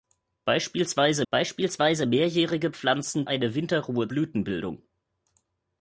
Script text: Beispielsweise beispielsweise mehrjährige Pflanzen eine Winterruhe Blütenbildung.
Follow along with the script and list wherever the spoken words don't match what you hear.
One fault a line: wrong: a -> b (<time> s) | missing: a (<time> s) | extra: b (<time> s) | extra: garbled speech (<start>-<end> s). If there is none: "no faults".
no faults